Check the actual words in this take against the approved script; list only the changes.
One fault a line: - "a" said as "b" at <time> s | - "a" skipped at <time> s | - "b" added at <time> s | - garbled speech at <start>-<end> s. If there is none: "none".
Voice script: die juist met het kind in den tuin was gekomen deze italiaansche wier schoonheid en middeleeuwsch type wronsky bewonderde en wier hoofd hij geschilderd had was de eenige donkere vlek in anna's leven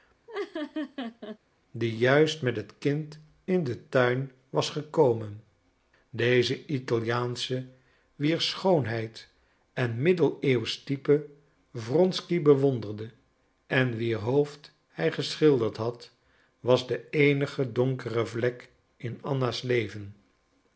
none